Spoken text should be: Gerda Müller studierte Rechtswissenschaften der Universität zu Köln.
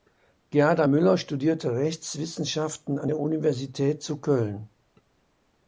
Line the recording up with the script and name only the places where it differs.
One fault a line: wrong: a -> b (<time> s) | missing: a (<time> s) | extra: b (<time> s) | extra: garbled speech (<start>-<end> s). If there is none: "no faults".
extra: an (3.0 s)